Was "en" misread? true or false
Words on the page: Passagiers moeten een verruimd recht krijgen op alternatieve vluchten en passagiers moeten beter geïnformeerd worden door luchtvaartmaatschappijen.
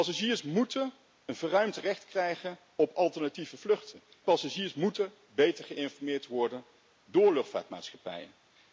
true